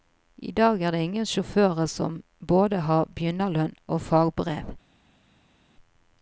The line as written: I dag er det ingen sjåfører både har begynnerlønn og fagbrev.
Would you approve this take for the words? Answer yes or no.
no